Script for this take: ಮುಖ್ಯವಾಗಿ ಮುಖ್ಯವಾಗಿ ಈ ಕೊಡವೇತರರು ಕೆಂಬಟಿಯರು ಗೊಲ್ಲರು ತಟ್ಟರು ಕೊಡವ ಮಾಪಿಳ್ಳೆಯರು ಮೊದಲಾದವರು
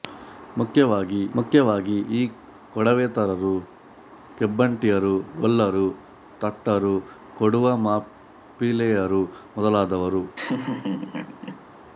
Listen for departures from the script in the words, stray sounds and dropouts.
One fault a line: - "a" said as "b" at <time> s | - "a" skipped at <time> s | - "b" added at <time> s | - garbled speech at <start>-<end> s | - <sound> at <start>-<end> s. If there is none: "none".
- laugh at 10.4-11.6 s